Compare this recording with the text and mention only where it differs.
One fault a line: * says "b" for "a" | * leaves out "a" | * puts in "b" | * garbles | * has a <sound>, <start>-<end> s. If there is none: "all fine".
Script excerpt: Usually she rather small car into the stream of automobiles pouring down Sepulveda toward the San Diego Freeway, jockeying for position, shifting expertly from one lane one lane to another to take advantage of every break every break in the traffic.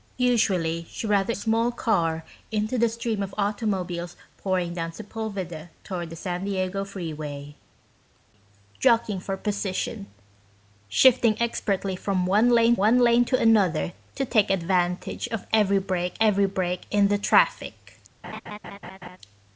* has a laugh, 18.2-19.2 s